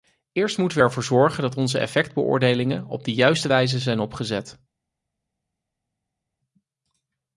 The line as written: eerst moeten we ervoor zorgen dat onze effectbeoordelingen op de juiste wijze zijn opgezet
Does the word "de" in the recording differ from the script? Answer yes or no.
no